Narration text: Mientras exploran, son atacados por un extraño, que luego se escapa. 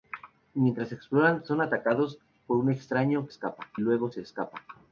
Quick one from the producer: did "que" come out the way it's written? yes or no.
no